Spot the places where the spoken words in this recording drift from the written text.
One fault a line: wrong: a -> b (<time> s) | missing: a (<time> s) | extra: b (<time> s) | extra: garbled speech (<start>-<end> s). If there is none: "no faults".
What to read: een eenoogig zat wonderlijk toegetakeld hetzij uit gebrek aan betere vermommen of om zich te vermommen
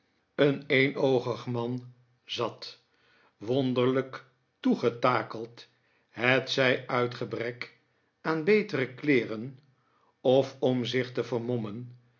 extra: man (1.4 s)
wrong: vermommen -> kleeren (8.9 s)